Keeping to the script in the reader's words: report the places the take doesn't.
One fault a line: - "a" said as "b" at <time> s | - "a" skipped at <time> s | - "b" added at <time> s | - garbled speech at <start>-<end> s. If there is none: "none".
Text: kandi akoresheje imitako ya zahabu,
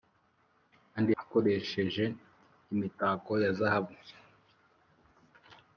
none